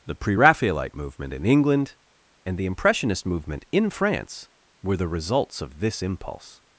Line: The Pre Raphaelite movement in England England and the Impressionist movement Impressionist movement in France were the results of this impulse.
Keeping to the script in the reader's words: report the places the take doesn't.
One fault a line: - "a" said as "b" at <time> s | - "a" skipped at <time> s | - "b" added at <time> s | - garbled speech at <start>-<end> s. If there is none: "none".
- "England" skipped at 2.0 s
- "Impressionist movement" skipped at 3.6 s